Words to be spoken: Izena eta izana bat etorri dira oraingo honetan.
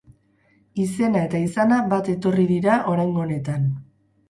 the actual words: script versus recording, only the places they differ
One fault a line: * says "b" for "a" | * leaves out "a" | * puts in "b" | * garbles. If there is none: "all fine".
all fine